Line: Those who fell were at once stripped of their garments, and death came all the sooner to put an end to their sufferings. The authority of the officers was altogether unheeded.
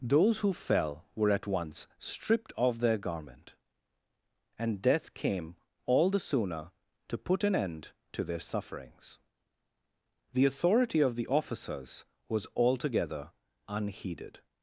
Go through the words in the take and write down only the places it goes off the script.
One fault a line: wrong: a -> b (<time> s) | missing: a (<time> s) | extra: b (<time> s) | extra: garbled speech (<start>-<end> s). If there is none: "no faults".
wrong: garments -> garment (3.0 s)